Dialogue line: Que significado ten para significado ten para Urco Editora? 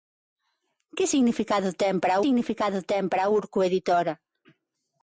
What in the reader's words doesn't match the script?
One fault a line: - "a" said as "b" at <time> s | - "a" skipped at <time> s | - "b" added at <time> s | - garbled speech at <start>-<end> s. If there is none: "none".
none